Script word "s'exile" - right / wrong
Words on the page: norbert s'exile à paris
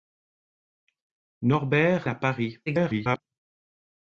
wrong